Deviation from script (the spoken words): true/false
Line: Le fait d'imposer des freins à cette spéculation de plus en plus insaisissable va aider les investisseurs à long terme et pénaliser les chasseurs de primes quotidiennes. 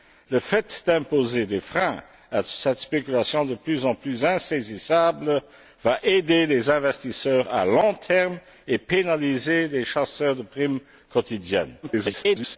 true